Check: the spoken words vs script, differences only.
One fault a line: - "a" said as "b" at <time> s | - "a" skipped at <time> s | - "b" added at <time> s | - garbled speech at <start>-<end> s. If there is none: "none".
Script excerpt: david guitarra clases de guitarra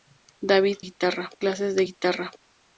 none